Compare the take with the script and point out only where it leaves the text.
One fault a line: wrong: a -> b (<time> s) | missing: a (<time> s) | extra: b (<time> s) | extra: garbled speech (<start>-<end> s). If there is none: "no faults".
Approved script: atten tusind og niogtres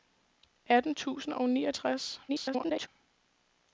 extra: garbled speech (2.3-2.9 s)